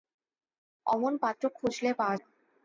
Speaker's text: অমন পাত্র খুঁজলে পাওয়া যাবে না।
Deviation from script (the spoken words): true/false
true